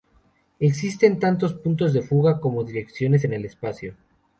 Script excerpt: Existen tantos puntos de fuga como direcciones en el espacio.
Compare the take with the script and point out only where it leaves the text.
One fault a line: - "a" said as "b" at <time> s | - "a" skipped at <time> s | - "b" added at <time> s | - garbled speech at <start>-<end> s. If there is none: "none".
none